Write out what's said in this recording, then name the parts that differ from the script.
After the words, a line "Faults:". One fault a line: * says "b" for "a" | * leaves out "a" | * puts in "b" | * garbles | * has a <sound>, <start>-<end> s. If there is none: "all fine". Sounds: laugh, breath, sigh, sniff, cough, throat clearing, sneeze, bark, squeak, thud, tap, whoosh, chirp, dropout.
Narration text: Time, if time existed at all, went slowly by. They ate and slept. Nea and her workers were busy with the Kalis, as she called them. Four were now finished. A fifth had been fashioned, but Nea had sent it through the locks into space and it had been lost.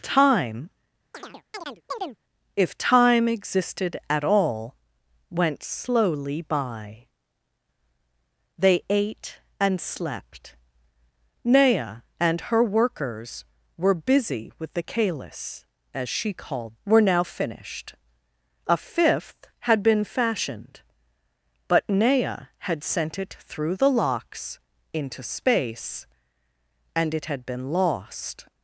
Time, if time existed at all, went slowly by. They ate and slept. Nea and her workers were busy with the Kalis, as she called were now finished. A fifth had been fashioned, but Nea had sent it through the locks into space and it had been lost.
Faults:
* has a chirp, 1.1-2.2 s
* leaves out "them Four"